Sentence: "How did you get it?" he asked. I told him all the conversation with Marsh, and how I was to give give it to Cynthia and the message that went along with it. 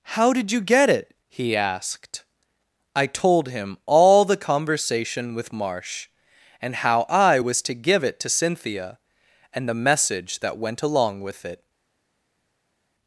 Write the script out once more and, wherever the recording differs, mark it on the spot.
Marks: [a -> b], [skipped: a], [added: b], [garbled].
"How did you get it?" he asked. I told him all the conversation with Marsh, and how I was to give [skipped: give] it to Cynthia and the message that went along with it.